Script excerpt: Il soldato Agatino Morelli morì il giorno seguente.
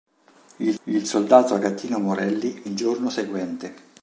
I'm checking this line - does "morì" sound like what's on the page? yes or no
no